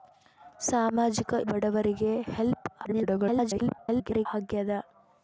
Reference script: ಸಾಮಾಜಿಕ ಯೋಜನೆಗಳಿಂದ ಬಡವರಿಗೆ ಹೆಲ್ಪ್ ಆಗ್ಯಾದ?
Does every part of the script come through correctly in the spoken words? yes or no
no